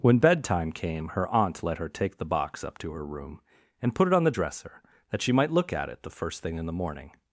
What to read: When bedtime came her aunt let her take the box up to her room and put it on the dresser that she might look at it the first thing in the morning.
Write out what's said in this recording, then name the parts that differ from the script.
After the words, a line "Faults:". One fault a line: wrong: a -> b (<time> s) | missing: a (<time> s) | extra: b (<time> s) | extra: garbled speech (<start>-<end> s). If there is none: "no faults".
When bedtime came her aunt let her take the box up to her room and put it on the dresser that she might look at it the first thing in the morning.
Faults:
no faults